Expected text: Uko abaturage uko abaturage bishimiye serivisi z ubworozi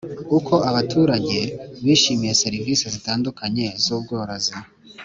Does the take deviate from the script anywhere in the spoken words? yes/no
yes